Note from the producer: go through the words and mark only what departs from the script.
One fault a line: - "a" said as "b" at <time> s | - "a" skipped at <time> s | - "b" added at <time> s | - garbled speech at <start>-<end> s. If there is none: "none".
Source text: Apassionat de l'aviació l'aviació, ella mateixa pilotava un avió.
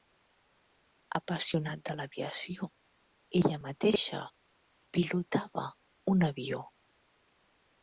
- "l'aviació" skipped at 2.7 s